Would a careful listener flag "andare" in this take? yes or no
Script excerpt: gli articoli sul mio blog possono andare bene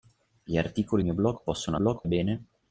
yes